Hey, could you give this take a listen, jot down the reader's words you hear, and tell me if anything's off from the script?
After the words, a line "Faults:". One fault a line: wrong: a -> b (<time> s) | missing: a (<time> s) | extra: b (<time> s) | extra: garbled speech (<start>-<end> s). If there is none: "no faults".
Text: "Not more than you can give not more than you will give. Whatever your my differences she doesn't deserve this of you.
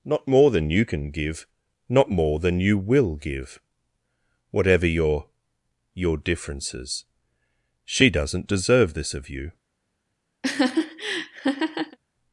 "Not more than you can give not more than you will give. Whatever your your differences she doesn't deserve this of you.
Faults:
wrong: my -> your (5.9 s)